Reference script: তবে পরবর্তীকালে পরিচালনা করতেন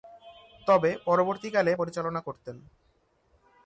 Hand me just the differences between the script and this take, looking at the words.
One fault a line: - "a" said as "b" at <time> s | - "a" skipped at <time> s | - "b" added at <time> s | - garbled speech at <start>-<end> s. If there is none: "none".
none